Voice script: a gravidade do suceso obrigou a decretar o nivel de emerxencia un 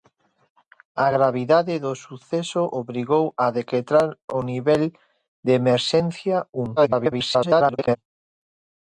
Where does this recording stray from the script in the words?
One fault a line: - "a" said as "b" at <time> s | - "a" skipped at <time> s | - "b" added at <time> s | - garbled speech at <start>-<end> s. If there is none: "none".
- garbled speech at 6.8-8.0 s